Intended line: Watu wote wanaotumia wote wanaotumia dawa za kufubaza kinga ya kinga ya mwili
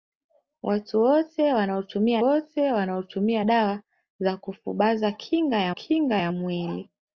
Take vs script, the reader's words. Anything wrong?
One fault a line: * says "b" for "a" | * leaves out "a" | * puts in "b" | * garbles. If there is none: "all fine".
all fine